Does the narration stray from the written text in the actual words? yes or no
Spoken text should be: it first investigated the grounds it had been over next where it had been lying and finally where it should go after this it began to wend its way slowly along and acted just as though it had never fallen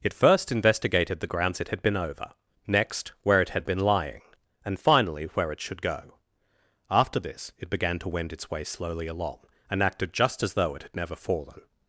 no